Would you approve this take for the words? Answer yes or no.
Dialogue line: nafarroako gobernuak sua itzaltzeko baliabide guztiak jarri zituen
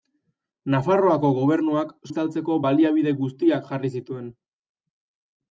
no